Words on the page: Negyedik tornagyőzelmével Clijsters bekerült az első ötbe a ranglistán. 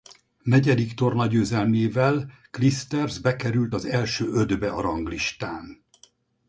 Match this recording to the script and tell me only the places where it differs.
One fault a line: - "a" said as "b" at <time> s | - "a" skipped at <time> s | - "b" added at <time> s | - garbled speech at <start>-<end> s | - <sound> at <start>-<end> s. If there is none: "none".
none